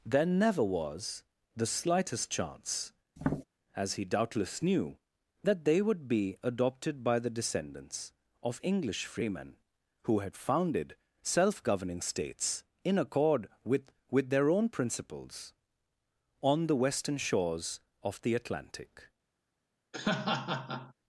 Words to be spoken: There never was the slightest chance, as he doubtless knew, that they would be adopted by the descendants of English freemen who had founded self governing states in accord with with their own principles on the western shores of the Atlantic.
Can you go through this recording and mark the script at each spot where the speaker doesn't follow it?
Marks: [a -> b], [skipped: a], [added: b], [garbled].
There never was the slightest chance, as he doubtless knew, that they would be adopted by the descendants of English freemen who had founded self governing states in accord with with their own principles on the western shores of the Atlantic.